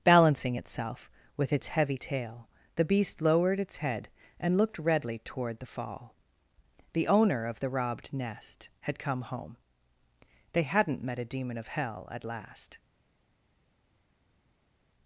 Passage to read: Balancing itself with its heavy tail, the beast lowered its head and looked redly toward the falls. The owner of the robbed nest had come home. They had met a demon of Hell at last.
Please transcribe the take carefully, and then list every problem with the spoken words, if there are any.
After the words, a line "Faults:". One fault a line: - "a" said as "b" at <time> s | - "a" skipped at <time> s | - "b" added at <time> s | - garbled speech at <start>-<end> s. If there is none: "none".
Balancing itself with its heavy tail, the beast lowered its head and looked redly toward the fall. The owner of the robbed nest had come home. They hadn't met a demon of Hell at last.
Faults:
- "falls" said as "fall" at 5.7 s
- "had" said as "hadn't" at 10.6 s